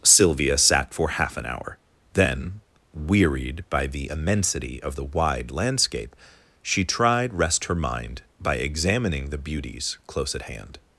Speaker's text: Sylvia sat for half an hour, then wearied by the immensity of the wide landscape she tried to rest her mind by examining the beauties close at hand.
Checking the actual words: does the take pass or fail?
fail